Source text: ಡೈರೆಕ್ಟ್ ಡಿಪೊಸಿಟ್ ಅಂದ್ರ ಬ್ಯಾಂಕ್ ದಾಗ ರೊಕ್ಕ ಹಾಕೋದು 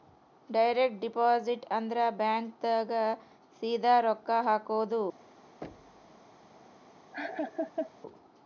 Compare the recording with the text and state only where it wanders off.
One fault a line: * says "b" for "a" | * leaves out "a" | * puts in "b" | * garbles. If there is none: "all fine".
* puts in "ಸೀದಾ"